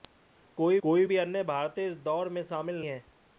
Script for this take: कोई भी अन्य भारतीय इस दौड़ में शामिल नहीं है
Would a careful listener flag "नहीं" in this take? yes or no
yes